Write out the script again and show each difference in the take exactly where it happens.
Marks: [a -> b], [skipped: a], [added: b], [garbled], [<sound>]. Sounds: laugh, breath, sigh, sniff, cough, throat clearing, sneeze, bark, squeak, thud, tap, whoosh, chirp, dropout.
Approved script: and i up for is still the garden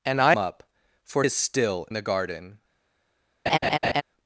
and i up for is still the garden [laugh]